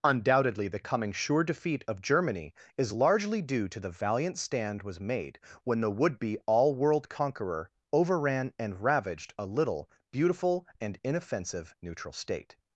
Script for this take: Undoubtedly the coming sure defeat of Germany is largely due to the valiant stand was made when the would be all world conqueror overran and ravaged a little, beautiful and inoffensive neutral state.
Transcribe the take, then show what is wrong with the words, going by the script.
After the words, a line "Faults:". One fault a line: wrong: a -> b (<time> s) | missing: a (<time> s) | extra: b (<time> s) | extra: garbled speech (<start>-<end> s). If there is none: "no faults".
Undoubtedly the coming sure defeat of Germany is largely due to the valiant stand was made when the would be all world conqueror overran and ravaged a little, beautiful and inoffensive neutral state.
Faults:
no faults